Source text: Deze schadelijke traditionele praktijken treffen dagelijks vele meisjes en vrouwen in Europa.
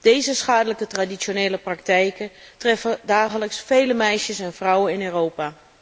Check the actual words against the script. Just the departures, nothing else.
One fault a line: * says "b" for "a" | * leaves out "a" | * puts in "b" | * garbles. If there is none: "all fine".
all fine